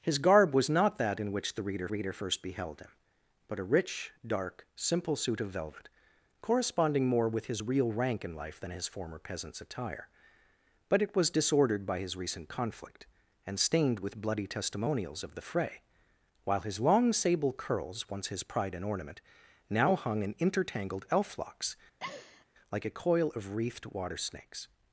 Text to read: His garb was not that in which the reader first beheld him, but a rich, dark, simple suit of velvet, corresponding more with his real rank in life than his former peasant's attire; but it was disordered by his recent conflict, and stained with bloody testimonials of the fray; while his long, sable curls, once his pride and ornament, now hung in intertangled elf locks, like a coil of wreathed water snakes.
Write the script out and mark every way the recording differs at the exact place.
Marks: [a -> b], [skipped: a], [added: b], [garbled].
His garb was not that in which the reader [added: reader] first beheld him, but a rich, dark, simple suit of velvet, corresponding more with his real rank in life than his former peasant's attire; but it was disordered by his recent conflict, and stained with bloody testimonials of the fray; while his long, sable curls, once his pride and ornament, now hung in intertangled elf locks, like a coil of wreathed water snakes.